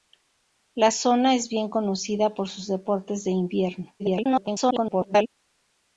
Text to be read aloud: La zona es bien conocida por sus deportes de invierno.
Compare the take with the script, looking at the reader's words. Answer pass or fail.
fail